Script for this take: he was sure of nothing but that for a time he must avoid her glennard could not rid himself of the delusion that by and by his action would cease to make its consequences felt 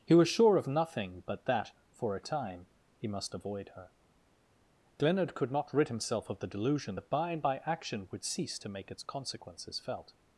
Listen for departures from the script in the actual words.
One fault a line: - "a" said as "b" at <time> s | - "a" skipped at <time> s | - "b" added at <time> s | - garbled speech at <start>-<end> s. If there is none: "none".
- "his" skipped at 7.6 s